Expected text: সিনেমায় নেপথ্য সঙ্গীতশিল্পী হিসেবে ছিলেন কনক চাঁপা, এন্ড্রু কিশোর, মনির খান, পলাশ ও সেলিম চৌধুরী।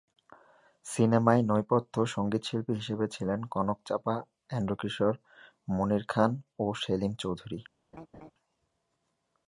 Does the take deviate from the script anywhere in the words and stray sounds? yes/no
yes